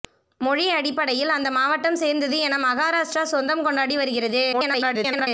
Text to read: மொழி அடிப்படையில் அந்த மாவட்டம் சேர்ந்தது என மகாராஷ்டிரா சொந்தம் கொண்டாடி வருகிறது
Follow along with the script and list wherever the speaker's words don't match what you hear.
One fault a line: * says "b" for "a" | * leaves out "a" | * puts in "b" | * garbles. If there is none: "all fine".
* garbles